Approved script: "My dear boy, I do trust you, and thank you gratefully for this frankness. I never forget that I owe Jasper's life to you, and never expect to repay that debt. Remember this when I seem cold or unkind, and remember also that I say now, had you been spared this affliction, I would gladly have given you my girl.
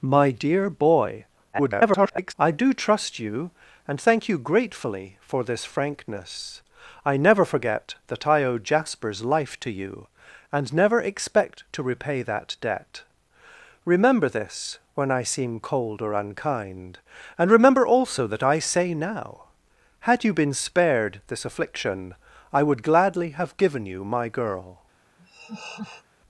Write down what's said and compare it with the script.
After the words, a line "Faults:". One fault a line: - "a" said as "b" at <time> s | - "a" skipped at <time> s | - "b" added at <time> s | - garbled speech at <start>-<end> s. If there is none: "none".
"My dear boy, [garbled] I do trust you, and thank you gratefully for this frankness. I never forget that I owe Jasper's life to you, and never expect to repay that debt. Remember this when I seem cold or unkind, and remember also that I say now, had you been spared this affliction, I would gladly have given you my girl.
Faults:
- garbled speech at 1.5-2.3 s